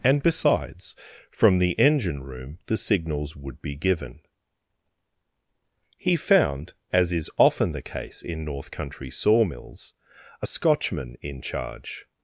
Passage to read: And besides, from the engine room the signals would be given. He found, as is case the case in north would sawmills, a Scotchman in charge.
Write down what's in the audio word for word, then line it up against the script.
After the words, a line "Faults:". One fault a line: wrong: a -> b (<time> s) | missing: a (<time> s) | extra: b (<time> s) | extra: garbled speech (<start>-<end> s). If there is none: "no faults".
And besides, from the engine room the signals would be given. He found, as is often the case in north country sawmills, a Scotchman in charge.
Faults:
wrong: case -> often (7.4 s)
wrong: would -> country (8.7 s)